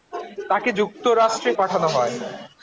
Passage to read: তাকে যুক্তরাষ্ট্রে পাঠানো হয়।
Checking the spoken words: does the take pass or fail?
pass